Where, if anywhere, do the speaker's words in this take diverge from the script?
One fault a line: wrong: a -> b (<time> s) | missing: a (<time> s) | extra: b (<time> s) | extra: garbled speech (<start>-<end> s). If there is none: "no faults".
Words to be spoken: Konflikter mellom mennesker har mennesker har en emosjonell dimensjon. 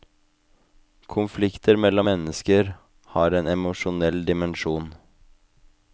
missing: mennesker har (3.3 s)